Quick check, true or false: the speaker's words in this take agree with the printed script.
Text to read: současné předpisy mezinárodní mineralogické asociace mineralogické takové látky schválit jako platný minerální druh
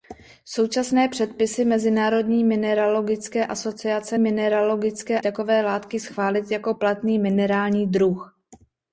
true